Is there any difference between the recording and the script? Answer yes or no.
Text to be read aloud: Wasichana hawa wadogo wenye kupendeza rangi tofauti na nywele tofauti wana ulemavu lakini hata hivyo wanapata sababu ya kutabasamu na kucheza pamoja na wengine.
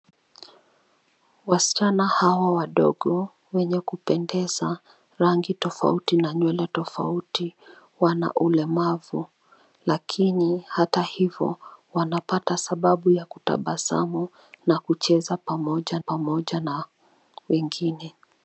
yes